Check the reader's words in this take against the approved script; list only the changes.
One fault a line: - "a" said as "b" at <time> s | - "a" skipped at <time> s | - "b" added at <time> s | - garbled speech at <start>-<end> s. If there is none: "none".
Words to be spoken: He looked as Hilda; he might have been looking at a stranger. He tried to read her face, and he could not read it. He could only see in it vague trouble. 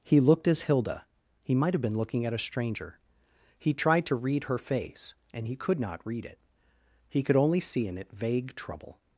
none